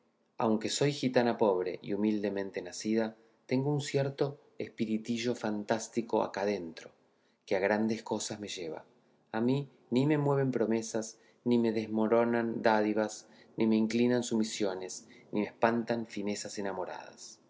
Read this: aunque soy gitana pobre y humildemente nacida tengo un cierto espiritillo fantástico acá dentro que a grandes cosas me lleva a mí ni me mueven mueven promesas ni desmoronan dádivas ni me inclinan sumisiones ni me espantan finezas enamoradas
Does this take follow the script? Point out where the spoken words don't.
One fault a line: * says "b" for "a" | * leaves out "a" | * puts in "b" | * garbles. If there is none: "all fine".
* leaves out "mueven"
* puts in "me"